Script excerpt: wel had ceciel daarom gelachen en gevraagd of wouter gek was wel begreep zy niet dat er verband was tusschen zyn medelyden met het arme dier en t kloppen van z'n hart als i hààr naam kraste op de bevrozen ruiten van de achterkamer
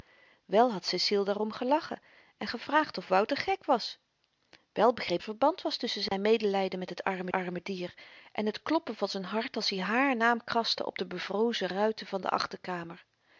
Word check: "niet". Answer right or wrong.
wrong